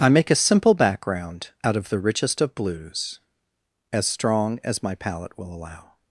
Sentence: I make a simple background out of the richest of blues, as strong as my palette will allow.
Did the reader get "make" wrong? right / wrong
right